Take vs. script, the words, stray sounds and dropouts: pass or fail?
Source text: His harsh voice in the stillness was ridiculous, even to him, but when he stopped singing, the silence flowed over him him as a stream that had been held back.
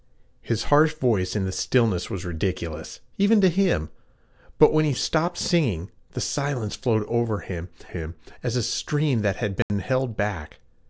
fail